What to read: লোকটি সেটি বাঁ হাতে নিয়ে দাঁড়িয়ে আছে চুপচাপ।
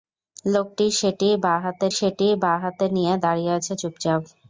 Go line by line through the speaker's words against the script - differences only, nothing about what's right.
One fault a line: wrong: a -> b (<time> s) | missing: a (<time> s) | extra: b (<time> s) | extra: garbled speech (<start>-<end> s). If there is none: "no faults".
extra: সেটি বাঁ হাতে (2.0 s)